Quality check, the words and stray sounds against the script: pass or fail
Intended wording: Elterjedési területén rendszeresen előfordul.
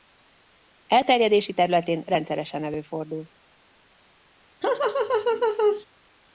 fail